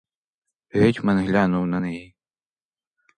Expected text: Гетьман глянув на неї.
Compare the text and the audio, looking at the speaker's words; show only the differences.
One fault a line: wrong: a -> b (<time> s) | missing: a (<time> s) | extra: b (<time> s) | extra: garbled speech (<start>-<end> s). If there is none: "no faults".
no faults